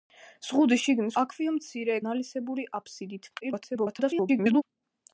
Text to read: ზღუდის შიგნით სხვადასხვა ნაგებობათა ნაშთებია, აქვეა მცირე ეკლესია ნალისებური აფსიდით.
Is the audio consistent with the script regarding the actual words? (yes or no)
no